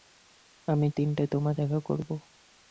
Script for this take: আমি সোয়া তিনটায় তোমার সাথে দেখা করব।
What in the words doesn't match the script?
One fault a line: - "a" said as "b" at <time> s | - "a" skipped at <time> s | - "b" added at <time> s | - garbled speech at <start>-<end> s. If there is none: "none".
- "সোয়া" skipped at 0.9 s
- "সাথে" skipped at 1.6 s